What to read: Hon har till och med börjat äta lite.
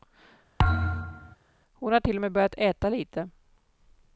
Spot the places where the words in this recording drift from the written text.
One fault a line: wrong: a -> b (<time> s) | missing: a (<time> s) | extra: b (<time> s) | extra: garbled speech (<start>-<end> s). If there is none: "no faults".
no faults